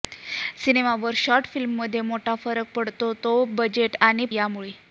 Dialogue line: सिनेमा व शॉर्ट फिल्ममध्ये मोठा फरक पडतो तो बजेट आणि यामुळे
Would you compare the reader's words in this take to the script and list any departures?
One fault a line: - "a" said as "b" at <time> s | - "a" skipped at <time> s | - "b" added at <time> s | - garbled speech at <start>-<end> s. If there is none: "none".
none